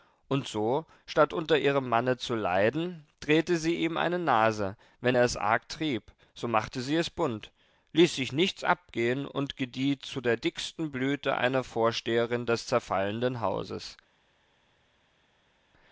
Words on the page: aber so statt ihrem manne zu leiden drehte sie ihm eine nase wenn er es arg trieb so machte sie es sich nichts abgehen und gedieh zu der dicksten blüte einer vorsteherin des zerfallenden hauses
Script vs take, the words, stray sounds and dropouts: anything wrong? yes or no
yes